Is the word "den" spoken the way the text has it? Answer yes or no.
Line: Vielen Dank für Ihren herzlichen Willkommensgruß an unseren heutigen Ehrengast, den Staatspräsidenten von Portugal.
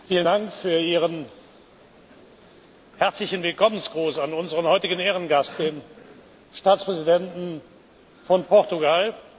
yes